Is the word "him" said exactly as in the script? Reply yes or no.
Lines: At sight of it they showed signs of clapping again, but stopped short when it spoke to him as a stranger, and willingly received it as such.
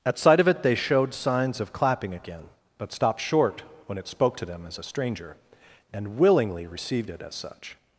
no